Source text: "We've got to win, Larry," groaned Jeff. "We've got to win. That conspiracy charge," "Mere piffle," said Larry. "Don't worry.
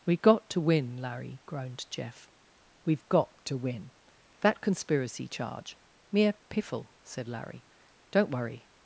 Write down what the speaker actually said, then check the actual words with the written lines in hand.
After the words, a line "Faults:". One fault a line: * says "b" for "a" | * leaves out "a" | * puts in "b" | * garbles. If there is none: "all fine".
"We've got to win, Larry," groaned Jeff. "We've got to win. That conspiracy charge," "Mere piffle," said Larry. "Don't worry.
Faults:
all fine